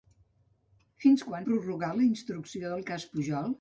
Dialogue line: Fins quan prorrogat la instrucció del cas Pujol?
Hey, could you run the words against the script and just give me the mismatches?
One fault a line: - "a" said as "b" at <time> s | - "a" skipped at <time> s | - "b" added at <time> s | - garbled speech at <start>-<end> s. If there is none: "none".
none